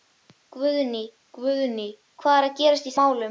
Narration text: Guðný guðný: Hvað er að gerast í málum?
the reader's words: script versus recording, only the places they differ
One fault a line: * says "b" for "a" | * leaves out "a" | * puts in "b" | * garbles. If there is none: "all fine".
all fine